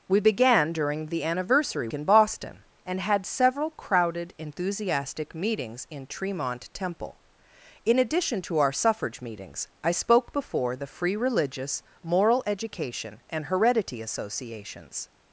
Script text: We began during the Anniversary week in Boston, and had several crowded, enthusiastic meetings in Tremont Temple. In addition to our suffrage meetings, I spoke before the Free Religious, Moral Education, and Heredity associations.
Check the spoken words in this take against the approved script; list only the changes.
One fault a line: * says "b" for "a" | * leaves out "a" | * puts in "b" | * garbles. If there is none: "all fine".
* leaves out "week"